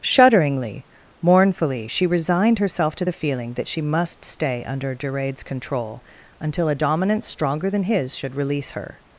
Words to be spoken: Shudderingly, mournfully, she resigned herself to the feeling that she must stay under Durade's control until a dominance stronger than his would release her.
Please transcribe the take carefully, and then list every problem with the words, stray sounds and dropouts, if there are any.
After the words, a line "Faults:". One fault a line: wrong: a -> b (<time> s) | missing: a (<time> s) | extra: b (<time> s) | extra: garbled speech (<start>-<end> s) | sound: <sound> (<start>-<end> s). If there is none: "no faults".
Shudderingly, mournfully, she resigned herself to the feeling that she must stay under Durade's control until a dominance stronger than his should release her.
Faults:
wrong: would -> should (8.1 s)